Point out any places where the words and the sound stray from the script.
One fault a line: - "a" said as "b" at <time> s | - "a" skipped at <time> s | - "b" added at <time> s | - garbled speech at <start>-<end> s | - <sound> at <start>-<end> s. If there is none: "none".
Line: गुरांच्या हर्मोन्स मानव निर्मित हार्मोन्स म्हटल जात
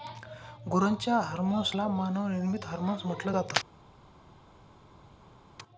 - "ला" added at 1.7 s